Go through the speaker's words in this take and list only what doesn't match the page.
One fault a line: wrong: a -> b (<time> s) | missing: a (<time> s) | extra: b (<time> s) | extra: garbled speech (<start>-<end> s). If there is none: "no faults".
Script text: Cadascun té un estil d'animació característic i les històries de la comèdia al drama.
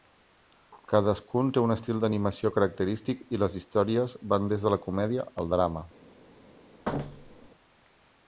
extra: van des (4.4 s)